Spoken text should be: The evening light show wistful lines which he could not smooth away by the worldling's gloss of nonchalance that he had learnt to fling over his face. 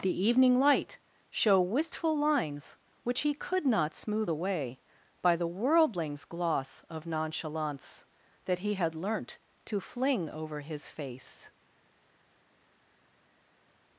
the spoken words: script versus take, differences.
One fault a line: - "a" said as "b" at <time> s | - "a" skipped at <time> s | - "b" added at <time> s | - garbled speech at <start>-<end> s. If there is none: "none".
none